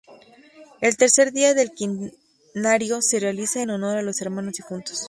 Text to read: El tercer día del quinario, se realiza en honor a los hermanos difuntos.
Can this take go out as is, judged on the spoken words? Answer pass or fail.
pass